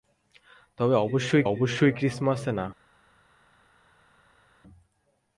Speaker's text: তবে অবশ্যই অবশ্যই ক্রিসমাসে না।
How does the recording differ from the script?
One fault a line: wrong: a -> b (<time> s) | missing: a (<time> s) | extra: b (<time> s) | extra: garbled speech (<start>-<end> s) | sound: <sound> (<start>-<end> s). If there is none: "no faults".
no faults